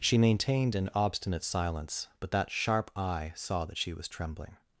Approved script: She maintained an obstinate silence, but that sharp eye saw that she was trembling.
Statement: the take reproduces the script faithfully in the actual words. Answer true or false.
true